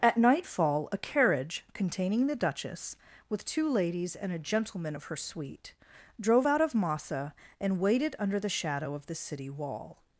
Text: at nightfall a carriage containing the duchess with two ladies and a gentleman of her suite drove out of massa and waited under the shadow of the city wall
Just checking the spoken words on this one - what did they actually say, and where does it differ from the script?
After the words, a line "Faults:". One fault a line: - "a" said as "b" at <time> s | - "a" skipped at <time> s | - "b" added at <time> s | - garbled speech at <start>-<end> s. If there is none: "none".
at nightfall a carriage containing the duchess with two ladies and a gentleman of her suite drove out of massa and waited under the shadow of the city wall
Faults:
none